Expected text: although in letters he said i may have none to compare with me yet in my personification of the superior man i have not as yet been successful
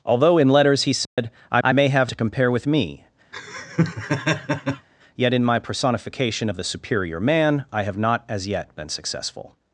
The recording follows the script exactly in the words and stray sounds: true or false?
false